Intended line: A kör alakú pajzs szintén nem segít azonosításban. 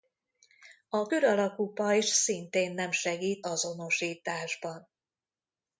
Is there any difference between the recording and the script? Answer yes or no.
no